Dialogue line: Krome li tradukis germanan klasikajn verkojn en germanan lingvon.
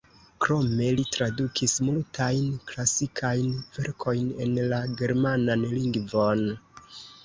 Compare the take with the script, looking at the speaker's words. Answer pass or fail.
fail